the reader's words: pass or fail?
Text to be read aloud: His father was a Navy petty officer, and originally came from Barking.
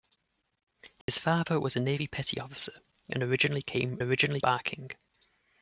fail